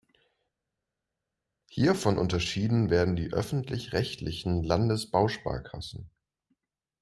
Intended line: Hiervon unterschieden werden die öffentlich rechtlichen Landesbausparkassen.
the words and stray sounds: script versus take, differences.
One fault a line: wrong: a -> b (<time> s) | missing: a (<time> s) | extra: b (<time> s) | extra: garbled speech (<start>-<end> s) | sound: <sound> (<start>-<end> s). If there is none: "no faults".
no faults